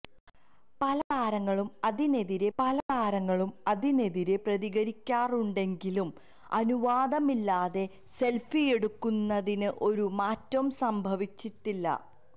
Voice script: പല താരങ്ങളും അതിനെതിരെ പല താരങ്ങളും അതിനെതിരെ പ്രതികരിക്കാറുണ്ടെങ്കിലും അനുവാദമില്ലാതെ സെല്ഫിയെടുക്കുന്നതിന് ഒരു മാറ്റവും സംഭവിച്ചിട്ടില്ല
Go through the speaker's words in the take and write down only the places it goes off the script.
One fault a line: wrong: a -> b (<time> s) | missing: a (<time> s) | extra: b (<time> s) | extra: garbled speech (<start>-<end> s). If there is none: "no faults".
no faults